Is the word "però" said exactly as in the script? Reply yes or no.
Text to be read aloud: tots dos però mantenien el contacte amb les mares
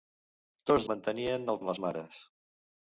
no